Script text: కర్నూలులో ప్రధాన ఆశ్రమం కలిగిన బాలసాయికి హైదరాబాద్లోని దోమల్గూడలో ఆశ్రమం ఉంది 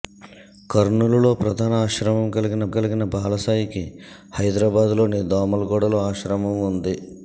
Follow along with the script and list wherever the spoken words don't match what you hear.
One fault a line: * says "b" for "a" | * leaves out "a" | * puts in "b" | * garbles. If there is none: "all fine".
* puts in "కలిగిన"